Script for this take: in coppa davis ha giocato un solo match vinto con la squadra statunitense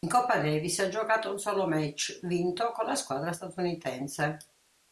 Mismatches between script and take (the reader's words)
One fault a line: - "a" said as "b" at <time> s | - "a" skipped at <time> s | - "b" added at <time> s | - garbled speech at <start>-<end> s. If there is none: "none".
none